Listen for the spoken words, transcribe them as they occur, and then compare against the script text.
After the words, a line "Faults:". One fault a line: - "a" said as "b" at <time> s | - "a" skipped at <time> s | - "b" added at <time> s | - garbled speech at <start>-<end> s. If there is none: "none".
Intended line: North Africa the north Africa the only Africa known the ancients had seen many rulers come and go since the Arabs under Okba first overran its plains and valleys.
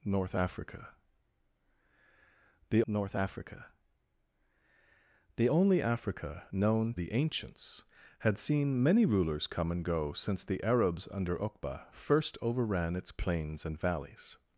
North Africa the north Africa the only Africa known the ancients had seen many rulers come and go since the Arabs under Okba first overran its plains and valleys.
Faults:
none